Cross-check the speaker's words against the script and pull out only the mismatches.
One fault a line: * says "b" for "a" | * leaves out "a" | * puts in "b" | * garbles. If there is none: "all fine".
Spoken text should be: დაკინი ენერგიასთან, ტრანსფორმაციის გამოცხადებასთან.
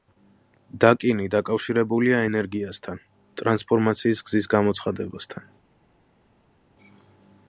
* puts in "დაკავშირებულია"
* puts in "გზის"